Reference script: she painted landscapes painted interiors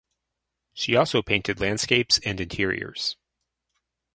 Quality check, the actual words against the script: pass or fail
fail